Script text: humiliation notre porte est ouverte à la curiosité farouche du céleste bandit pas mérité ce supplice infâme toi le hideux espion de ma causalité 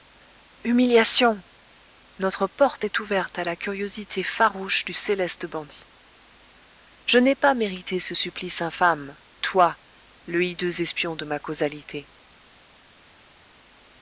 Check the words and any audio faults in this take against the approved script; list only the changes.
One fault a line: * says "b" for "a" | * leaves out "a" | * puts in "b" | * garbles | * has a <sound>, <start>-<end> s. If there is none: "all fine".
* puts in "je n'ai"